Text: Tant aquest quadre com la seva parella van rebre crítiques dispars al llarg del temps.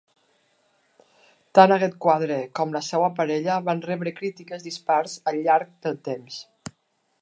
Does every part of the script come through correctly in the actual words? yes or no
yes